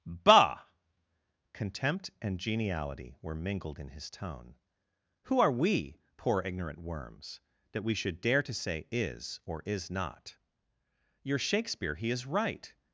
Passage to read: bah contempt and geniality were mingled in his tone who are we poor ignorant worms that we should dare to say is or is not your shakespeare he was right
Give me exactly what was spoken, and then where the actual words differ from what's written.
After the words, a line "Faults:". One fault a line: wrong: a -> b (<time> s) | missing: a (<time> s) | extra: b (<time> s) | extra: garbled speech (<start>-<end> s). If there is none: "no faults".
bah contempt and geniality were mingled in his tone who are we poor ignorant worms that we should dare to say is or is not your shakespeare he is right
Faults:
wrong: was -> is (12.1 s)